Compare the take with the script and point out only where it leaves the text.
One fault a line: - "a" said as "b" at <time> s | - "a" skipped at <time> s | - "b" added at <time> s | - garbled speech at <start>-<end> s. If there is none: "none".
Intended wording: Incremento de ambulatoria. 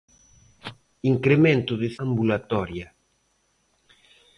none